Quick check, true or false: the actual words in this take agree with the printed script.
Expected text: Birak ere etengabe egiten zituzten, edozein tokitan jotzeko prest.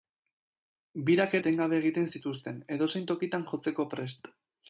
false